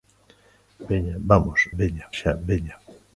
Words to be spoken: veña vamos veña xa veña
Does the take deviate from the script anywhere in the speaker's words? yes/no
no